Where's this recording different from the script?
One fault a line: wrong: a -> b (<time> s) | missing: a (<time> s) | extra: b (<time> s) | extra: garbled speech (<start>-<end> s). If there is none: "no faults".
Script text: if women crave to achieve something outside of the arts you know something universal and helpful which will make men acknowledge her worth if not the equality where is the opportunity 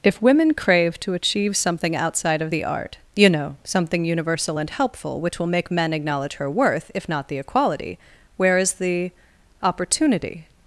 wrong: arts -> art (2.6 s)